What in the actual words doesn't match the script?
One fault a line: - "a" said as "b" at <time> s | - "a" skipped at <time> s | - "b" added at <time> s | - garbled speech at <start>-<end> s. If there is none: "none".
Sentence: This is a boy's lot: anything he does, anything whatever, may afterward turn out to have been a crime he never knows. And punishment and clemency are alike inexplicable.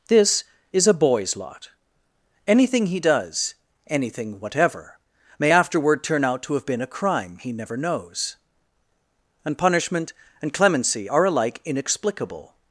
none